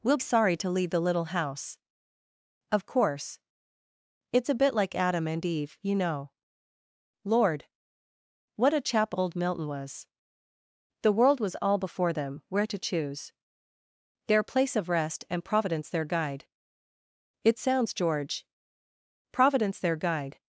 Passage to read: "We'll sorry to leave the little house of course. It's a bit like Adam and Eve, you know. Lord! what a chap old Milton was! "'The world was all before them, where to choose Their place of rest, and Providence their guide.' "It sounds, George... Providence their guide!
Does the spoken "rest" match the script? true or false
true